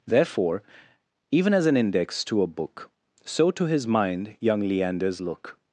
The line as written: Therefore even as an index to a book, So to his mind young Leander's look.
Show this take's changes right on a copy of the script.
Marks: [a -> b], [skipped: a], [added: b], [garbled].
Therefore even as an index to a book, So to his mind young Leander's look.